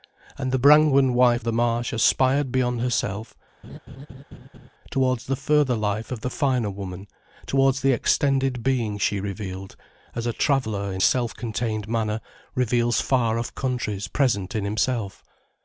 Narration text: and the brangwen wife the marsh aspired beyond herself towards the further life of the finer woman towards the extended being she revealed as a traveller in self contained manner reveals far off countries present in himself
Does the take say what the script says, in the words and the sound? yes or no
no